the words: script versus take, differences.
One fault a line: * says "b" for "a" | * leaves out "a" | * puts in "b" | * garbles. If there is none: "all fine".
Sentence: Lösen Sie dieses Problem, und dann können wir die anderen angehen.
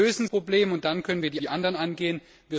* leaves out "Sie dieses"
* puts in "die"